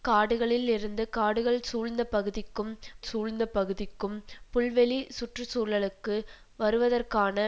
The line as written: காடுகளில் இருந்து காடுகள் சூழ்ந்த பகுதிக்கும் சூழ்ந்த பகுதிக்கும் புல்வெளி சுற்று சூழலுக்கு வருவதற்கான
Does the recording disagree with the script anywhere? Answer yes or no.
no